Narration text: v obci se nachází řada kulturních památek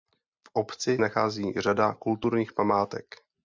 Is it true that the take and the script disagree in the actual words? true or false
true